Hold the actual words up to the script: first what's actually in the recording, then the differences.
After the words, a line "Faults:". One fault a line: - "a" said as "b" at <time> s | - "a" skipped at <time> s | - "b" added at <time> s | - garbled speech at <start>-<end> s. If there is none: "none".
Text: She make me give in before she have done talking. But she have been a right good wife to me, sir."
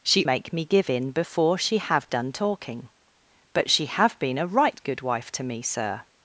She make me give in before she have done talking. But she have been a right good wife to me, sir."
Faults:
none